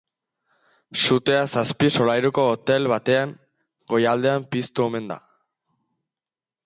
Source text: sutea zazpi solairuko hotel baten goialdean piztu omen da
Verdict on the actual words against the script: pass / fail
pass